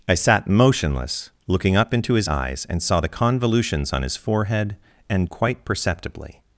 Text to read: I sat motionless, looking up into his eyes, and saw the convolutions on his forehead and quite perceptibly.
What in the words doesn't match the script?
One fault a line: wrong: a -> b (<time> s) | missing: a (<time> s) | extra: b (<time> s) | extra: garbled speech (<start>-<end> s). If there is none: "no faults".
no faults